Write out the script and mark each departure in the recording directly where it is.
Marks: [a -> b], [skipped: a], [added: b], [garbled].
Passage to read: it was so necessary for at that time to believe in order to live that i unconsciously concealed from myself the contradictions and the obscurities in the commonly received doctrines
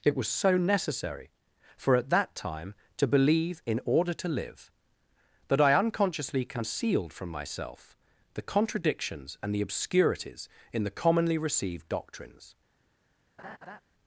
it was so necessary for at that time to believe in order to live that i unconsciously concealed from myself the contradictions and the obscurities in the commonly received doctrines